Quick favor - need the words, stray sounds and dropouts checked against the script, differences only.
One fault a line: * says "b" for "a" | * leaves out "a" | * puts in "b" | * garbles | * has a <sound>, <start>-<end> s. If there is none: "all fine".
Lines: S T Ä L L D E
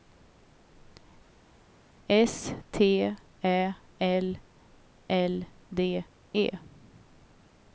all fine